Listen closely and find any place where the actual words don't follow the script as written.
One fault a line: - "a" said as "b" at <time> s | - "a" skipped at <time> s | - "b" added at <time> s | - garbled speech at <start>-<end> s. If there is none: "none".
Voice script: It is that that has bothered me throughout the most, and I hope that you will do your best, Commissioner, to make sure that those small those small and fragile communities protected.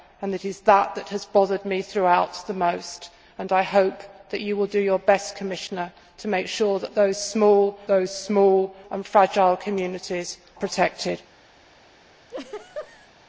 none